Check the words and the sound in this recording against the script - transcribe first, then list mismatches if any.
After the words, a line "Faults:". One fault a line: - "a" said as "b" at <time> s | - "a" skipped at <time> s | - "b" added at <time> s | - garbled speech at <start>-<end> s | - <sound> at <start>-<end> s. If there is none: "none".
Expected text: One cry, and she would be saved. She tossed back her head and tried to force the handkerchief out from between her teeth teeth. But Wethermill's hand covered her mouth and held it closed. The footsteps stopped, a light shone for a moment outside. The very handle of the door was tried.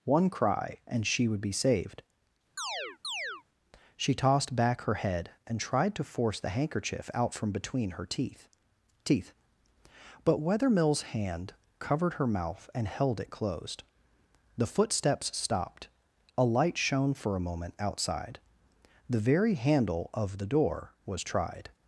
One cry, and she would be saved. She tossed back her head and tried to force the handkerchief out from between her teeth teeth. But Wethermill's hand covered her mouth and held it closed. The footsteps stopped, a light shone for a moment outside. The very handle of the door was tried.
Faults:
- chirp at 2.6-3.4 s